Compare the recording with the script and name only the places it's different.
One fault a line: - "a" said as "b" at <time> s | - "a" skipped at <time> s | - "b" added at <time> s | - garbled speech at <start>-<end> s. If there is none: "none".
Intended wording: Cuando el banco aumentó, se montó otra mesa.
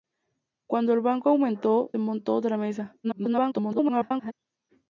- "se" skipped at 1.9 s
- garbled speech at 3.0-4.3 s